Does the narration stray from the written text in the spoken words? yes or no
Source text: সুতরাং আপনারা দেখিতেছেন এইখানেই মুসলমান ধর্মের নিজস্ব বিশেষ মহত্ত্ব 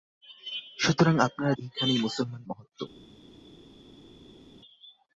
yes